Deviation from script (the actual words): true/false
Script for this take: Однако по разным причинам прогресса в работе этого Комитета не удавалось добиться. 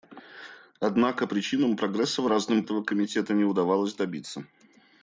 true